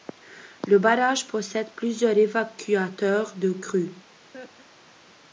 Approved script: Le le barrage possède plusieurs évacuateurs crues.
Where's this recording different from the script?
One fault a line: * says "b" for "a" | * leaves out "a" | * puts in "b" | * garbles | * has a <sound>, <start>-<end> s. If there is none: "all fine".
* leaves out "le"
* puts in "de"
* has a laugh, 4.3-5.0 s